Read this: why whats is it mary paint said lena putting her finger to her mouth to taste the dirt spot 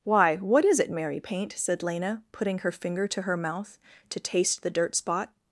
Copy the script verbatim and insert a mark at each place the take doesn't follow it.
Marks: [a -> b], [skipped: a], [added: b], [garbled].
why [whats -> what] is it mary paint said lena putting her finger to her mouth to taste the dirt spot